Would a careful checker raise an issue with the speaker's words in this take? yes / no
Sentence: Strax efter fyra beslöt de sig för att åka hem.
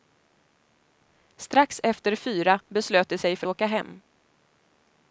yes